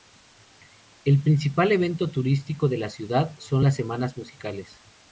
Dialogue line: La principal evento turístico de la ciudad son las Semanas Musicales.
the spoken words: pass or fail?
fail